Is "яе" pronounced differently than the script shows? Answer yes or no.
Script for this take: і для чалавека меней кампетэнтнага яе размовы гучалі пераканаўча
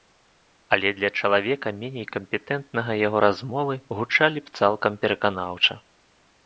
yes